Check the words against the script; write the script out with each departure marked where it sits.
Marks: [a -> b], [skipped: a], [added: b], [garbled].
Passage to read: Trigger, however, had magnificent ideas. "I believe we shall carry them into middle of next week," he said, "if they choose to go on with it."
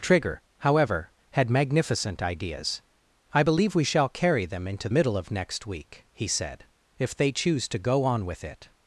Trigger, however, had magnificent ideas. "I believe we shall carry them into middle of next week," he said, "if they choose to go on with it."